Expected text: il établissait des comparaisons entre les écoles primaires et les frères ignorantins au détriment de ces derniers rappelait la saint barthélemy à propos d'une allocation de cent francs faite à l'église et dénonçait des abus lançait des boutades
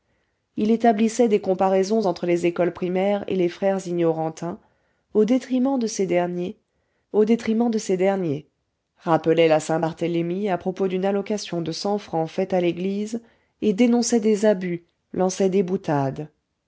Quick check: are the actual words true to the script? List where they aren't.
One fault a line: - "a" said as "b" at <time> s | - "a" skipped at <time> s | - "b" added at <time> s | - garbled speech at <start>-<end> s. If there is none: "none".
none